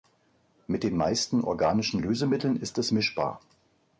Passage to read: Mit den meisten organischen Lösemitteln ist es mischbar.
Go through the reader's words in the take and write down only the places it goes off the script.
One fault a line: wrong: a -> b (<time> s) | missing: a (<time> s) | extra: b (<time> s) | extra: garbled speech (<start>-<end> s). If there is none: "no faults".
no faults